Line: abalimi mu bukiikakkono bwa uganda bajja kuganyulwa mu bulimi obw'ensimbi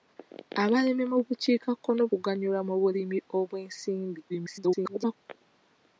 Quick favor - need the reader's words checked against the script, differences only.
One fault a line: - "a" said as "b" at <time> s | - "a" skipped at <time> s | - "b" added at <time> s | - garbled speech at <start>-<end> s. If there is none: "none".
- "bwa uganda bajja" skipped at 2.0 s
- garbled speech at 4.3-5.2 s